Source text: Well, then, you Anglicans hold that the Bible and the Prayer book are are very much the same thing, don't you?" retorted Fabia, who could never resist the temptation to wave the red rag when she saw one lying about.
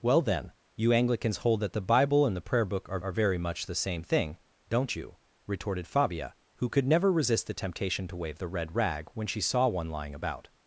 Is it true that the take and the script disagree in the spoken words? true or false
false